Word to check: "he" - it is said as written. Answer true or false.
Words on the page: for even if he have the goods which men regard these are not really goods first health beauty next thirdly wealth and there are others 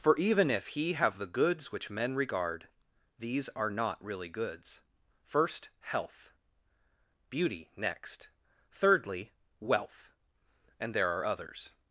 true